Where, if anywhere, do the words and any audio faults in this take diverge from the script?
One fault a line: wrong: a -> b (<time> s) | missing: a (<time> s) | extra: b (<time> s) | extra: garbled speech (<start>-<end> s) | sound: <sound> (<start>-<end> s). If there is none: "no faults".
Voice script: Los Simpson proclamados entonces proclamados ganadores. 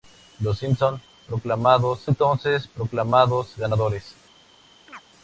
sound: chirp (4.9-5.0 s)